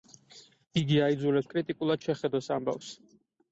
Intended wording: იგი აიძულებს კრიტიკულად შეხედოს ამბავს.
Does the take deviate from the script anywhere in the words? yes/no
no